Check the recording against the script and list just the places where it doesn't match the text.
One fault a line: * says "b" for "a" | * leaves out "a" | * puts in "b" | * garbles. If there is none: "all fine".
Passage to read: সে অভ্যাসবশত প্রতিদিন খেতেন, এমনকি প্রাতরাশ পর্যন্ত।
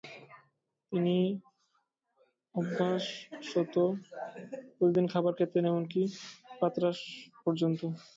* says "তিনি" for "সে"
* puts in "খাবার"